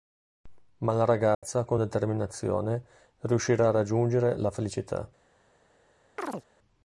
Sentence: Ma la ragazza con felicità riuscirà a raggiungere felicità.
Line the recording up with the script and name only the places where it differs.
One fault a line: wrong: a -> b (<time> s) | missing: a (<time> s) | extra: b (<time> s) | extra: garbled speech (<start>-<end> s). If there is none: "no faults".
wrong: felicità -> determinazione (1.8 s)
extra: la (4.4 s)